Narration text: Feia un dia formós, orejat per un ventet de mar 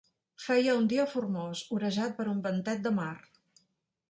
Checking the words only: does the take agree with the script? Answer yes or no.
yes